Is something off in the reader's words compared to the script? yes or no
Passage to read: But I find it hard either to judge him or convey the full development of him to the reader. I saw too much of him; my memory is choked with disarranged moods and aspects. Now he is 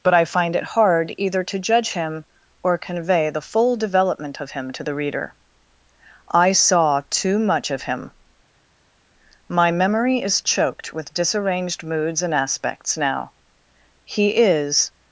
no